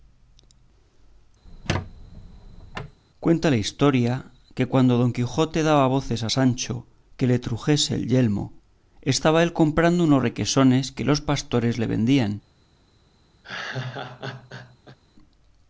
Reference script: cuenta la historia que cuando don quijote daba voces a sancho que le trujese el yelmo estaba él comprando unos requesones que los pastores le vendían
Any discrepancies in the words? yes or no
no